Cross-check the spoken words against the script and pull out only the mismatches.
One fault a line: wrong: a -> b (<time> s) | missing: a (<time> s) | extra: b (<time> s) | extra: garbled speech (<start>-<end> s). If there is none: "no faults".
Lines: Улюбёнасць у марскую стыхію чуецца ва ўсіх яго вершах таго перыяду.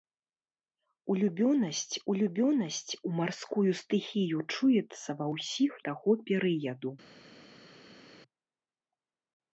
extra: улюбёнасць (2.1 s)
missing: яго вершах (5.7 s)